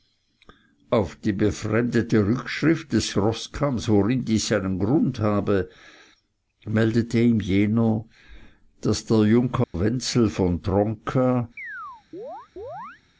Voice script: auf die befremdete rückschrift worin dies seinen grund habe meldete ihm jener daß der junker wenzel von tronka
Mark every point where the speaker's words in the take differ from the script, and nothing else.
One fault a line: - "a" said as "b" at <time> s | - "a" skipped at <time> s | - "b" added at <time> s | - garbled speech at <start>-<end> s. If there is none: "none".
- "des roßkamms" added at 2.9 s